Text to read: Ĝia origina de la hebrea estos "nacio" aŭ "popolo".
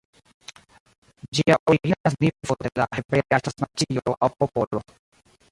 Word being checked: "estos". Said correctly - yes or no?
no